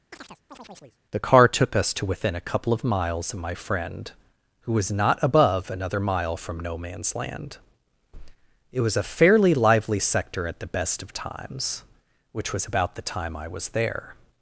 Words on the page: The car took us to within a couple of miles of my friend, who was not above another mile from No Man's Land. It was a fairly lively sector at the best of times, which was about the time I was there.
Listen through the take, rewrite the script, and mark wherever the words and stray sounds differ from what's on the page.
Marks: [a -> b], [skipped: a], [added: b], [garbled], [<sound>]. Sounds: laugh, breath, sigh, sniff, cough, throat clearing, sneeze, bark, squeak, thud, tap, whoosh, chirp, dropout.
[chirp] The car took us to within a couple of miles of my friend, who was not above another mile from No Man's Land. It was a fairly lively sector at the best of times, which was about the time I was there.